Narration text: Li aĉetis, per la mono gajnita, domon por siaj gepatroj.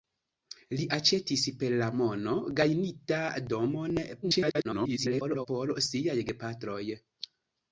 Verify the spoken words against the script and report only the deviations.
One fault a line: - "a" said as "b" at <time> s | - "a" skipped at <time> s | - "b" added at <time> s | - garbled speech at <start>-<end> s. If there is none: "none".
- garbled speech at 4.2-5.5 s